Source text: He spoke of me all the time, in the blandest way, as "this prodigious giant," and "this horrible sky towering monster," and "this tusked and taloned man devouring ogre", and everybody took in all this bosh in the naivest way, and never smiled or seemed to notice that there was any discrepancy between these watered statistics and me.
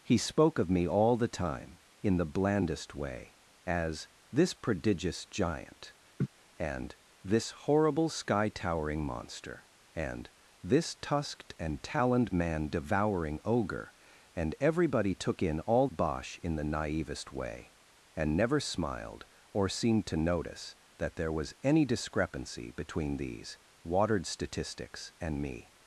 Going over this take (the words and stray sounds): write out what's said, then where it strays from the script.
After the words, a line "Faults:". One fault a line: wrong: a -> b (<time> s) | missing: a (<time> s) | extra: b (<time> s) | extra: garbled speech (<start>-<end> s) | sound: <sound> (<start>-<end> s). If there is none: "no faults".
He spoke of me all the time, in the blandest way, as "this prodigious giant," and "this horrible sky towering monster," and "this tusked and taloned man devouring ogre", and everybody took in all bosh in the naivest way, and never smiled or seemed to notice that there was any discrepancy between these watered statistics and me.
Faults:
sound: laugh (6.2-6.3 s)
missing: this (15.9 s)